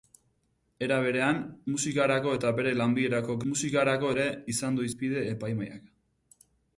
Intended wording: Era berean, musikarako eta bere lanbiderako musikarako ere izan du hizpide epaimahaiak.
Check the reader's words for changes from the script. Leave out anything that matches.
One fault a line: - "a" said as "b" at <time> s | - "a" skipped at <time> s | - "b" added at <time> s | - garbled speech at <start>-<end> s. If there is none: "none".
none